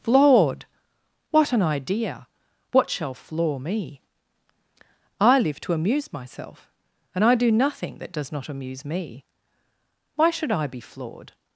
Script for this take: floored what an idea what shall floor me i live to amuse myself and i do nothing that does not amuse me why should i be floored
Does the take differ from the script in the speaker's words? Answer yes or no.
no